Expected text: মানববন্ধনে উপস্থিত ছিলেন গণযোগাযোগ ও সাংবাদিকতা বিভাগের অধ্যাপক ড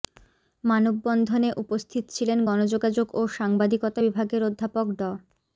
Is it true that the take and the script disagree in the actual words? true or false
false